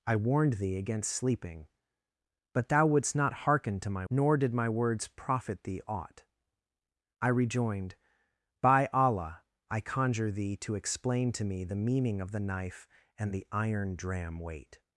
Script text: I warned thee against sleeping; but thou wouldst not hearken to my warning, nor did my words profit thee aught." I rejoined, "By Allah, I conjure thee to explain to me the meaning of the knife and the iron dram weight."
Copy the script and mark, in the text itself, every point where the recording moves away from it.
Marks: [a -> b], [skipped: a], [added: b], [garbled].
I warned thee against sleeping; but thou wouldst not hearken to my [skipped: warning,] nor did my words profit thee aught." I rejoined, "By Allah, I conjure thee to explain to me the meaning of the knife and the iron dram weight."